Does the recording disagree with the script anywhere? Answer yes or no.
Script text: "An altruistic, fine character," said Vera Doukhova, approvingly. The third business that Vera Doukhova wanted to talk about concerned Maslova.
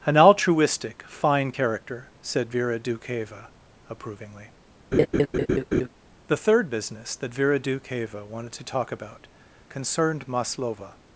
no